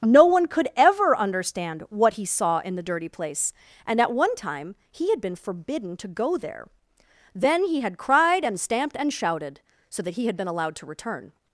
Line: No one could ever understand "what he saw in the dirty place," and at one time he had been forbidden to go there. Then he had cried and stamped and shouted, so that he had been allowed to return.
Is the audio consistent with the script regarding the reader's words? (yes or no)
yes